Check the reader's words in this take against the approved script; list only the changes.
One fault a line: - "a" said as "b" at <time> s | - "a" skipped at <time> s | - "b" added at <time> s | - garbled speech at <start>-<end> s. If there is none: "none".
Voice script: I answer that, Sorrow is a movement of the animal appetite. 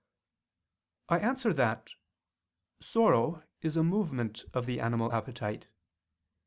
none